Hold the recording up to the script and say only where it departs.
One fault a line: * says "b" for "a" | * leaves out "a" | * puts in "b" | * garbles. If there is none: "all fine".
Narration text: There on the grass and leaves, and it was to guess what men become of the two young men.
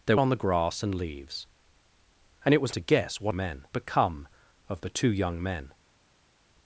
all fine